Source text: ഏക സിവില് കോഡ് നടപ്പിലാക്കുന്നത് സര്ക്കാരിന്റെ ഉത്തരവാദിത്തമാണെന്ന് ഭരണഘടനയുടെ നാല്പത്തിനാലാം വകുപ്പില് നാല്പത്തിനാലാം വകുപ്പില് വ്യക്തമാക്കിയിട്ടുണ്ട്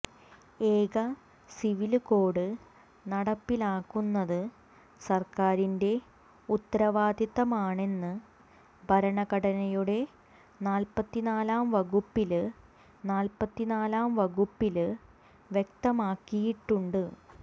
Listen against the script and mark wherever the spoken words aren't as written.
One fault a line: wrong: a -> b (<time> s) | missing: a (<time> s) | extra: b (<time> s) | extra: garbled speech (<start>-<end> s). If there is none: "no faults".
no faults